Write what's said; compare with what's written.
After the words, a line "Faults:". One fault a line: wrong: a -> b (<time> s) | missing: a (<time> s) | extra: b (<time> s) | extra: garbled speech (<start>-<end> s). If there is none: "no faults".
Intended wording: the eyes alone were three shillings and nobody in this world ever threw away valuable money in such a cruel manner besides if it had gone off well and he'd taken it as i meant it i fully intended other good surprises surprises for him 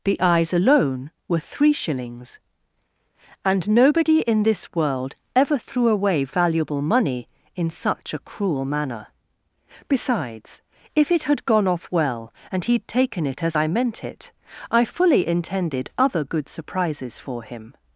the eyes alone were three shillings and nobody in this world ever threw away valuable money in such a cruel manner besides if it had gone off well and he'd taken it as i meant it i fully intended other good surprises for him
Faults:
missing: surprises (17.2 s)